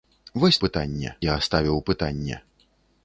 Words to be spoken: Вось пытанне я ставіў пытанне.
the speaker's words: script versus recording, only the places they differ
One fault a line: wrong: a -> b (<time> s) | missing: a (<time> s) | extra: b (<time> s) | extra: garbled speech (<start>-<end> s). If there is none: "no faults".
no faults